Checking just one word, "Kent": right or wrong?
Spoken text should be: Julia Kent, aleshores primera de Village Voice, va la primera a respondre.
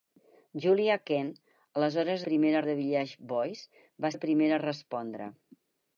right